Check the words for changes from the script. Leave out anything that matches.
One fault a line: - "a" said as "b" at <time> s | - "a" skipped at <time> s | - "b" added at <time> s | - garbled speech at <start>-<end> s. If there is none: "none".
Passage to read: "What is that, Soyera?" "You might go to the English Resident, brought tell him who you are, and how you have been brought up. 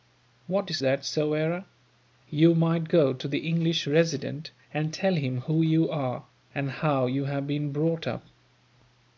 - "brought" said as "and" at 4.7 s